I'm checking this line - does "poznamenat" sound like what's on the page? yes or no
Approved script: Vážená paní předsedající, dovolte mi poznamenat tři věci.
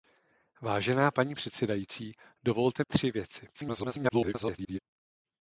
no